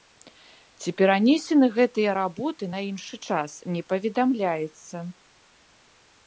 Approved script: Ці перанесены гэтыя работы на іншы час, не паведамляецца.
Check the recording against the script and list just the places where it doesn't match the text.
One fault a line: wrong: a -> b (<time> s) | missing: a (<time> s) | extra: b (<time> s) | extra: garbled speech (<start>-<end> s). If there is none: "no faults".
no faults